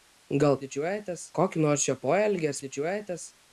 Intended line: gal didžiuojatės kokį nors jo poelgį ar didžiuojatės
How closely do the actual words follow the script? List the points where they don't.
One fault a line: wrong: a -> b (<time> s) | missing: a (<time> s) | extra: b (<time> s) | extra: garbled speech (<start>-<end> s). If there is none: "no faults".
no faults